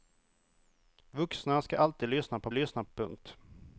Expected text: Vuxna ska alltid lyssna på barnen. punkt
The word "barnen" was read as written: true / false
false